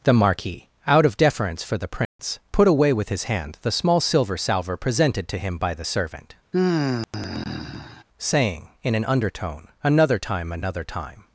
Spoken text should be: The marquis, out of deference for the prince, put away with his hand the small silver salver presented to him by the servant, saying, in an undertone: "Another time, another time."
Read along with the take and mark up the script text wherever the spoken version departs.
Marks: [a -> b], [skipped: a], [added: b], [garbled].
The marquis, out of deference for the prince, put away with his hand the small silver salver presented to him by the servant, saying, in an undertone: "Another time, another time."